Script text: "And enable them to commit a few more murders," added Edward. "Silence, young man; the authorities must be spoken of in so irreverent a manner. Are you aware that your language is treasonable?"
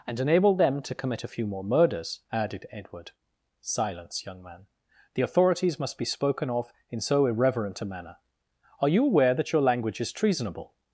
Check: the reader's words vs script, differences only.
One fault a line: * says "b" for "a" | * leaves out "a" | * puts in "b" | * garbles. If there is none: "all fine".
all fine